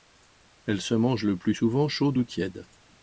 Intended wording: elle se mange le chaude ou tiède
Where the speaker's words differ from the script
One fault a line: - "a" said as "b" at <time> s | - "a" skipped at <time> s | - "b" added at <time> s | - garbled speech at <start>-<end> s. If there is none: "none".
- "plus souvent" added at 1.4 s